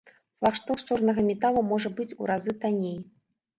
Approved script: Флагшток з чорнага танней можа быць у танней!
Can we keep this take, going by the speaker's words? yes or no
no